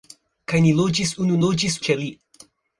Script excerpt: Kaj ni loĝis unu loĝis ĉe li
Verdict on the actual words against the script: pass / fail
pass